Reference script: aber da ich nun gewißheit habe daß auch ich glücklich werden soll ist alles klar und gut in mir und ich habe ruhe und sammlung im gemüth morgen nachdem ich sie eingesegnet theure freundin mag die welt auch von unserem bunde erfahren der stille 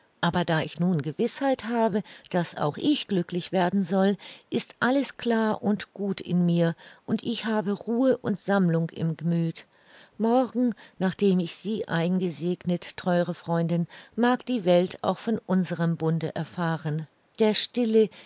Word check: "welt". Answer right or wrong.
right